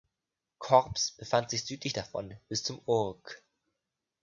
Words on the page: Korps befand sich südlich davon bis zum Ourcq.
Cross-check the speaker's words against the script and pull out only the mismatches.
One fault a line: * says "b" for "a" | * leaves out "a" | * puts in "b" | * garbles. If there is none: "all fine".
all fine